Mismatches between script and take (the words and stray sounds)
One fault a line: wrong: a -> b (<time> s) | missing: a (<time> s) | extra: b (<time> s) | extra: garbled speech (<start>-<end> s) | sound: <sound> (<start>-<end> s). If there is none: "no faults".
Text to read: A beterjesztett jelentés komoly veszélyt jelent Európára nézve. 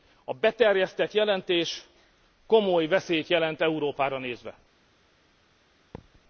sound: thud (5.9-6.2 s)